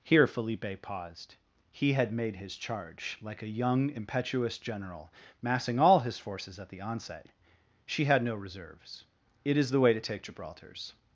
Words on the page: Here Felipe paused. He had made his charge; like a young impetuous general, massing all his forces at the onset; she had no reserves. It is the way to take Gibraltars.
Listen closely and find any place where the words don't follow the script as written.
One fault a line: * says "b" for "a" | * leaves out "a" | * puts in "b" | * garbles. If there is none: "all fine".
all fine